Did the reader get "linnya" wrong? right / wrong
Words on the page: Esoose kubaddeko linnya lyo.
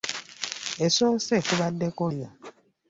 wrong